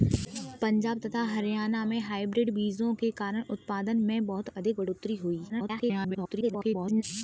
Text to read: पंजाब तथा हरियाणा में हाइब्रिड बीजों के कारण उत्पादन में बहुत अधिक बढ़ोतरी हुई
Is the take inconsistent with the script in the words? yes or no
yes